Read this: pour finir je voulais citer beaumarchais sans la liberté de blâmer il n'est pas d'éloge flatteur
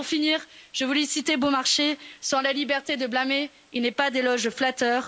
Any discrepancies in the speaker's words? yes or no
no